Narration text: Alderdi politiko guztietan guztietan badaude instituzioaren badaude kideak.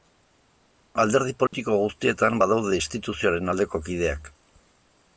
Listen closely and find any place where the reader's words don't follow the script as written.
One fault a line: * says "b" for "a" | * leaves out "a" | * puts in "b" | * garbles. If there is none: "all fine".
* leaves out "guztietan"
* says "aldeko" for "badaude"